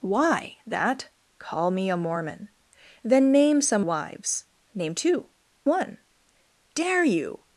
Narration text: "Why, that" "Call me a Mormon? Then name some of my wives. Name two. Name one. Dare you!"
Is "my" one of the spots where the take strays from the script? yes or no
yes